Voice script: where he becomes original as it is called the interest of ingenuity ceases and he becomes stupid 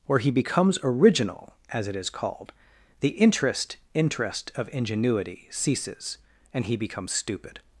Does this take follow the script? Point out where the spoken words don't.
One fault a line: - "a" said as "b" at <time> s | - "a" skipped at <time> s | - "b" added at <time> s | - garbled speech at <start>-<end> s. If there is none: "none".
- "interest" added at 3.9 s